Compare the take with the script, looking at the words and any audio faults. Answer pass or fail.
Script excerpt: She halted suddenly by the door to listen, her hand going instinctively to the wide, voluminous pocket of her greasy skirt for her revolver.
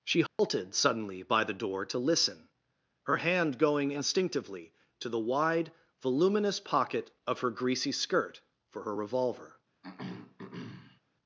fail